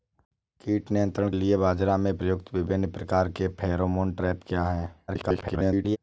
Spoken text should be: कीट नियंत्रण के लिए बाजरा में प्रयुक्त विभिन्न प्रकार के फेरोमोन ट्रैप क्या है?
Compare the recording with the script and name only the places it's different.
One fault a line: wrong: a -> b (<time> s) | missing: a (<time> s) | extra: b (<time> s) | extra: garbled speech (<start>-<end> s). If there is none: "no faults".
missing: के (1.3 s)
extra: garbled speech (5.1-6.0 s)